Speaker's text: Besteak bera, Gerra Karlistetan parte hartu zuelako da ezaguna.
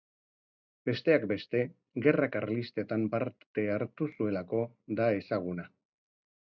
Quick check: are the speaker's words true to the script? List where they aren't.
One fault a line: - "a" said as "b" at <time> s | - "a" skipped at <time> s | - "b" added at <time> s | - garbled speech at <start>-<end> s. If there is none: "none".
- "bera" said as "beste" at 1.3 s